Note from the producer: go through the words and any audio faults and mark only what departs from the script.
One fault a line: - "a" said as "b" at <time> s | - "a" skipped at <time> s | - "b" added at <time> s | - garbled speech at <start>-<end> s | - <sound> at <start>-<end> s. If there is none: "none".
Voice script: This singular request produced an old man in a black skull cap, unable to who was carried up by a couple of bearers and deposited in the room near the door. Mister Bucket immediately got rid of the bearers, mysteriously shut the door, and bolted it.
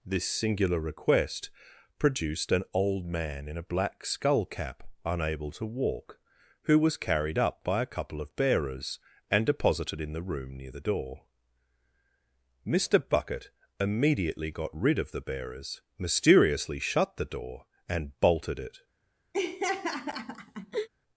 - "walk" added at 5.7 s
- laugh at 19.3-20.9 s